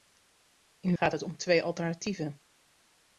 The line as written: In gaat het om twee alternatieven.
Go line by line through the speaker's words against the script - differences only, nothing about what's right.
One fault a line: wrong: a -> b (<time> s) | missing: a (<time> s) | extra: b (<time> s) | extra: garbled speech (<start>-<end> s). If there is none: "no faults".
no faults